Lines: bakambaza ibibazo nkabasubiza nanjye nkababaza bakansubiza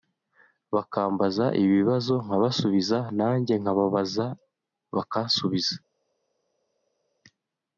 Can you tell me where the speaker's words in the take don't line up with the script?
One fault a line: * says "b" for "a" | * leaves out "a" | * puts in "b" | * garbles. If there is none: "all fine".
all fine